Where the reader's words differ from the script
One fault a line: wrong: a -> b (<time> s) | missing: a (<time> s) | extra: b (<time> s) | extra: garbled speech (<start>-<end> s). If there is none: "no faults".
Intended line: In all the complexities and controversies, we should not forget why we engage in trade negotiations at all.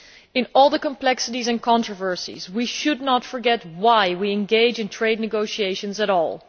no faults